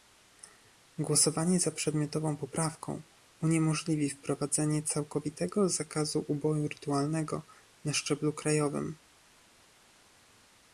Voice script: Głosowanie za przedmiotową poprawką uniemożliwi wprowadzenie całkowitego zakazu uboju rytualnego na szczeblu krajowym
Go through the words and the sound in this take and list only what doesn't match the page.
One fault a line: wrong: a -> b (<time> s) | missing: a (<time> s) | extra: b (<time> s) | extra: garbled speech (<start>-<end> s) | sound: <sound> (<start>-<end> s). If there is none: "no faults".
no faults